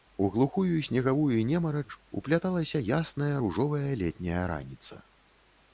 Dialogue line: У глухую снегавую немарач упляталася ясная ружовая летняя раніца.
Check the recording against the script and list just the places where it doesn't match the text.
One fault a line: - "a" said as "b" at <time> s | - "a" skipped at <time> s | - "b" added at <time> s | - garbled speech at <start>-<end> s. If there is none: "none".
none